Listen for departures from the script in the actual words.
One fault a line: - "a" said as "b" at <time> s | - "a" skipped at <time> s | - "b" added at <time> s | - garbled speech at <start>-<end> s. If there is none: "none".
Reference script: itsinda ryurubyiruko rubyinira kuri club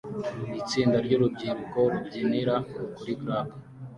none